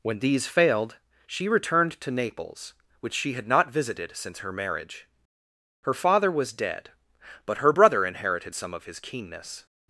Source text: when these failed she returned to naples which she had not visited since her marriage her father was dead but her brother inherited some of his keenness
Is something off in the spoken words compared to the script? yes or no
no